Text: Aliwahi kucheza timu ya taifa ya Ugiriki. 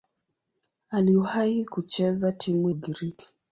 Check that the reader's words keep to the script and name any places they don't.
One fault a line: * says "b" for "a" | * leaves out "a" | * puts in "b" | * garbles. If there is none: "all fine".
* leaves out "ya taifa ya"